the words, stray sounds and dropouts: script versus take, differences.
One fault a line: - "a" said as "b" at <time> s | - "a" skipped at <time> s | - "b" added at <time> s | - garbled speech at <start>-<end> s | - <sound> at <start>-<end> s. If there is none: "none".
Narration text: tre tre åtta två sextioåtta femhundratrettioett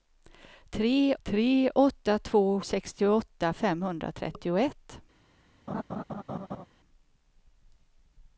- laugh at 5.7-6.7 s